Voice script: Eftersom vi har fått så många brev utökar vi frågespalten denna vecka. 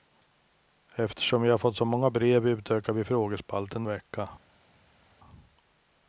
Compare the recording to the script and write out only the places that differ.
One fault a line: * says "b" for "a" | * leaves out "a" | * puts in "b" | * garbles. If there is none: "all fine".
* leaves out "denna"